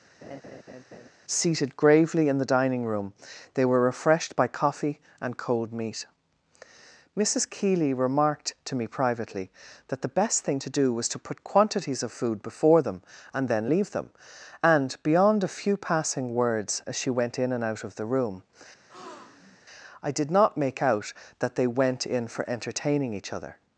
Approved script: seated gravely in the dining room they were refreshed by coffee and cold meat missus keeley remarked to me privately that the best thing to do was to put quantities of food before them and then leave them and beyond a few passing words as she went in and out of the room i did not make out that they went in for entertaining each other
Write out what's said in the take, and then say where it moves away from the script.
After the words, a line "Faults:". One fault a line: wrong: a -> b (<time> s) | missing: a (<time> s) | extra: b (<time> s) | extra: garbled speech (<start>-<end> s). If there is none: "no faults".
seated gravely in the dining room they were refreshed by coffee and cold meat missus keeley remarked to me privately that the best thing to do was to put quantities of food before them and then leave them and beyond a few passing words as she went in and out of the room i did not make out that they went in for entertaining each other
Faults:
no faults